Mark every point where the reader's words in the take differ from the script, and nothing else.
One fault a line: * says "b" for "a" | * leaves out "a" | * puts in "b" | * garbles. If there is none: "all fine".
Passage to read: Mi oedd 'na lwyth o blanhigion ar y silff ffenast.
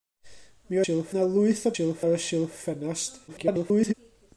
* says "silff" for "oedd"
* says "silff" for "blanhigion"
* garbles